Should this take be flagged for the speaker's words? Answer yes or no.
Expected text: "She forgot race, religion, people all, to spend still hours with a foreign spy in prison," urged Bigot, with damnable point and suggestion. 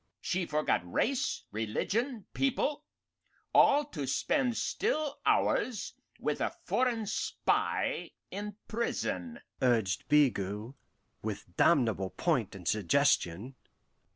no